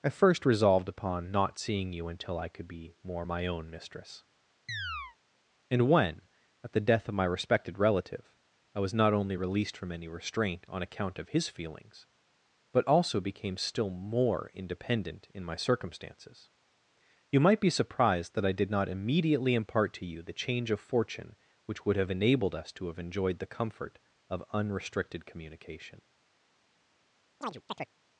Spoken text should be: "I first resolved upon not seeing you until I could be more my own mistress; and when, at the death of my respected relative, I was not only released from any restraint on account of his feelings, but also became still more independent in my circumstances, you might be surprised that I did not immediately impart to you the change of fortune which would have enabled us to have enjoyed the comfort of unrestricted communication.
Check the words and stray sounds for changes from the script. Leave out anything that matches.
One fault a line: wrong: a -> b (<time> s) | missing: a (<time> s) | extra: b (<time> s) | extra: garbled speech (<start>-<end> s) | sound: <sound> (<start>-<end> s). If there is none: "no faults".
sound: chirp (4.7-5.2 s)
sound: chirp (27.4-27.9 s)